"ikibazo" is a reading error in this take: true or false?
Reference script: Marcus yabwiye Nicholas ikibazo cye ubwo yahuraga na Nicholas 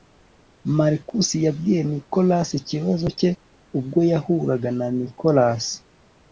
false